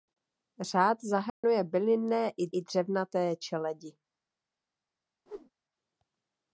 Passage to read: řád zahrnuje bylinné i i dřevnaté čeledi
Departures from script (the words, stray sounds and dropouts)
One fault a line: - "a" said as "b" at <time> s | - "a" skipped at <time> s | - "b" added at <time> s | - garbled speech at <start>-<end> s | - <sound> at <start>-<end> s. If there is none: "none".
- dropout at 1.3-1.4 s
- whoosh at 5.3-5.5 s